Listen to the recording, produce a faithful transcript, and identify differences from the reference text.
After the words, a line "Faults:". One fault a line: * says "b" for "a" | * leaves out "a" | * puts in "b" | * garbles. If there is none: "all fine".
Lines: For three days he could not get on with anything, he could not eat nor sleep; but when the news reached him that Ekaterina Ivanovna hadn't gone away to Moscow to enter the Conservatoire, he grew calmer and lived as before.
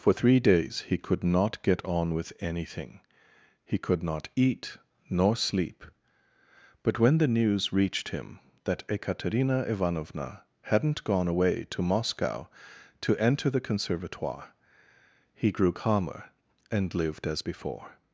For three days he could not get on with anything, he could not eat nor sleep; but when the news reached him that Ekaterina Ivanovna hadn't gone away to Moscow to enter the Conservatoire, he grew calmer and lived as before.
Faults:
all fine